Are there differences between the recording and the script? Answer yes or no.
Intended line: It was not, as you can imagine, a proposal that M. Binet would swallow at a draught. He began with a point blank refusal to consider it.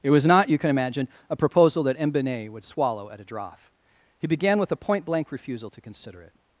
yes